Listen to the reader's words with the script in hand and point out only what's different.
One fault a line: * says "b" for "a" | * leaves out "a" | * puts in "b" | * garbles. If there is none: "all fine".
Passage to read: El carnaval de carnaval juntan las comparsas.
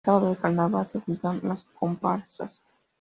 * says "sábado" for "carnaval"
* puts in "se"